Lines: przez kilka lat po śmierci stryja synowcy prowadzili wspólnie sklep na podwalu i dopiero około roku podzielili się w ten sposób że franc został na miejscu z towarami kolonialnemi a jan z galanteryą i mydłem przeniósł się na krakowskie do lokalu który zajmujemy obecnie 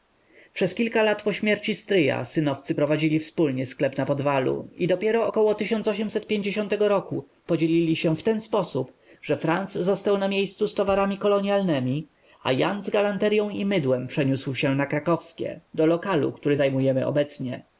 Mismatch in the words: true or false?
false